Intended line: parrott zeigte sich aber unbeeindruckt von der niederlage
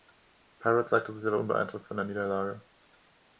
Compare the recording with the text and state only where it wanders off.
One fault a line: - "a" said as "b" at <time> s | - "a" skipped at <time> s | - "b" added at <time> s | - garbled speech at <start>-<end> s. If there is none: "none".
none